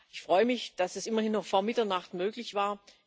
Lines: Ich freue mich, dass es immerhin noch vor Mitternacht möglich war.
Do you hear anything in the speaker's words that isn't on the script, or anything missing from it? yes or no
no